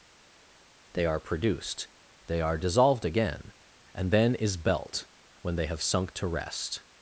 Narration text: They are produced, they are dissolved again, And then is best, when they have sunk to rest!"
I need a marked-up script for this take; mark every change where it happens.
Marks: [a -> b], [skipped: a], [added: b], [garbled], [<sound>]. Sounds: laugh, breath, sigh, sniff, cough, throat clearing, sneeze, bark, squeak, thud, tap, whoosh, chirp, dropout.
They are produced, they are dissolved again, And then is [best, -> belt] when they have sunk to rest!"